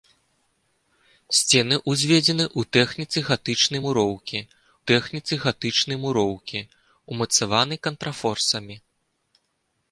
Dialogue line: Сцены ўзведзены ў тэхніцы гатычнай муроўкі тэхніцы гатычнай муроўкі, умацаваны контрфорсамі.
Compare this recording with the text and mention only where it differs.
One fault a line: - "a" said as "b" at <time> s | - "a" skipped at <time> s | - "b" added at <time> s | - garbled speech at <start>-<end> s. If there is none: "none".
none